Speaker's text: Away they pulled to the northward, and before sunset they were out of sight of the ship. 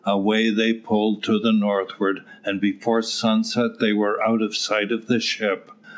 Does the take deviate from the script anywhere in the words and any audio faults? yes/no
no